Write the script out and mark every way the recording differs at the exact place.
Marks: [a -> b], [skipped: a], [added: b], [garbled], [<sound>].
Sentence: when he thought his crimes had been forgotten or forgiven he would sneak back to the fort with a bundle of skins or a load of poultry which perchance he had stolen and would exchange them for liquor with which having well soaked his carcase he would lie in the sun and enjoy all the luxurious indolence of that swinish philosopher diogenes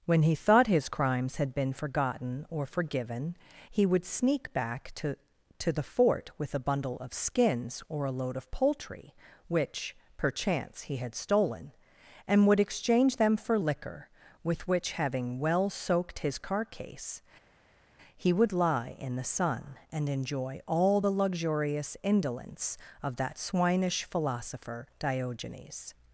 when he thought his crimes had been forgotten or forgiven he would sneak back to [added: to] the fort with a bundle of skins or a load of poultry which perchance he had stolen and would exchange them for liquor with which having well soaked his carcase he would lie in the sun and enjoy all the luxurious indolence of that swinish philosopher diogenes